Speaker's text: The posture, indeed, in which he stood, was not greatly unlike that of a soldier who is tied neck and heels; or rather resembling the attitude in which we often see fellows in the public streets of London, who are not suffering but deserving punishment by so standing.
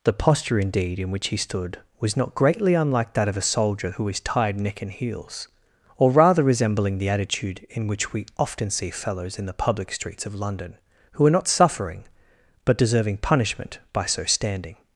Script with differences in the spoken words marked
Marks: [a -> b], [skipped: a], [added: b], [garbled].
The posture, indeed, in which he stood, was not greatly unlike that of a soldier who is tied neck and heels; or rather resembling the attitude in which we often see fellows in the public streets of London, who are not suffering but deserving punishment by so standing.